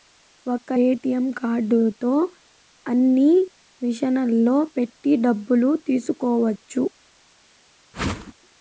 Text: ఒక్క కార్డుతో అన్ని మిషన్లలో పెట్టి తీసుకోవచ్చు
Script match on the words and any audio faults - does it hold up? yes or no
no